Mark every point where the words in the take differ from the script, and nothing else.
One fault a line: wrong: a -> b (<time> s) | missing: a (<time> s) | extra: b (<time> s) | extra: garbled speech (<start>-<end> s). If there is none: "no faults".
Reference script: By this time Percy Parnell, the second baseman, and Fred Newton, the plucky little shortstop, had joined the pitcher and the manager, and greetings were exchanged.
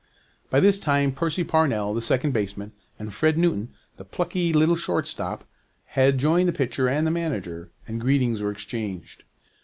no faults